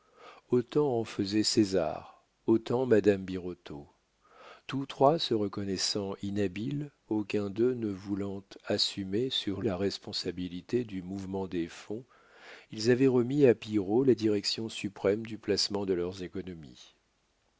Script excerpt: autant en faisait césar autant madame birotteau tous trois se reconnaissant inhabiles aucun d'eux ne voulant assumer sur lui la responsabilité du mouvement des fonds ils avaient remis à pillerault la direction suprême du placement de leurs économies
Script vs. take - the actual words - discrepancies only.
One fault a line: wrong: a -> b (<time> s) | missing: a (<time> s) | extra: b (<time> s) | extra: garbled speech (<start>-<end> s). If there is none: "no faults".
missing: lui (9.6 s)